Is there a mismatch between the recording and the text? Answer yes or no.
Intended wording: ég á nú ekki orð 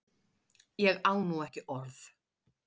no